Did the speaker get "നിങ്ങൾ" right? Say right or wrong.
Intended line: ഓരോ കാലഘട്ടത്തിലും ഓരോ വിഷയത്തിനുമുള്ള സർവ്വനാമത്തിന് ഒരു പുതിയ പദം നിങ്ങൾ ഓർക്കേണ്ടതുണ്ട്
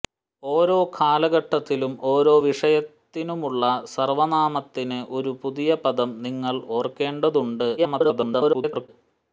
right